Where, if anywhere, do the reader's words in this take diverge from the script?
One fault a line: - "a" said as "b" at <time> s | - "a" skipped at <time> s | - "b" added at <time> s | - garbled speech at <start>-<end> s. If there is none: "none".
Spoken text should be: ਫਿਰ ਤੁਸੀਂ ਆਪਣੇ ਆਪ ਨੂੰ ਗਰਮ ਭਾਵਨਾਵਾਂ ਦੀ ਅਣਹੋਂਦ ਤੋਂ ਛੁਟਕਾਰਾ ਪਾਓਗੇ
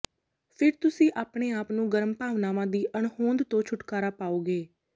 none